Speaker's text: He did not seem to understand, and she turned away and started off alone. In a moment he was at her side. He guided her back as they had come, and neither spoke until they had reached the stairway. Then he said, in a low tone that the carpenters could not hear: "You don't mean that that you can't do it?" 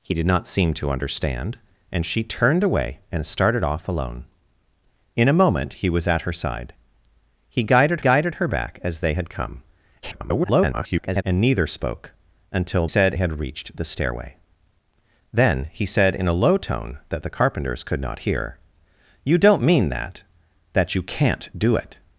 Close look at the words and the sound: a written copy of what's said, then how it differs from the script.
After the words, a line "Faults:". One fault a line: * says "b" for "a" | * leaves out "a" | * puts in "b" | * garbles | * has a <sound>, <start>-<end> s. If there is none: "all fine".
He did not seem to understand, and she turned away and started off alone. In a moment he was at her side. He guided guided her back as they had come, [garbled] and neither spoke until said had reached the stairway. Then he said, in a low tone that the carpenters could not hear: "You don't mean that that you can't do it?"
Faults:
* puts in "guided"
* garbles
* says "said" for "they"